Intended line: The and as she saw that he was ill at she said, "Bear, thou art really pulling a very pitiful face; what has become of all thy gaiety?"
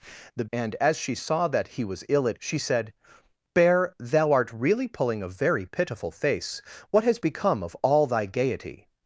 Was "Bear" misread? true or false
false